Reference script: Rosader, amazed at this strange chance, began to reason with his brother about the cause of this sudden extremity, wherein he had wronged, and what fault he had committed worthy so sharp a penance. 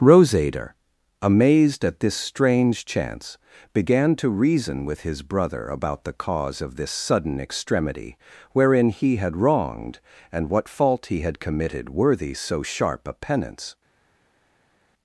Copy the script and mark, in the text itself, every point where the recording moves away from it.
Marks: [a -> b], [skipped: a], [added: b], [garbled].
Rosader, amazed at this strange chance, began to reason with his brother about the cause of this sudden extremity, wherein he had wronged, and what fault he had committed worthy so sharp a penance.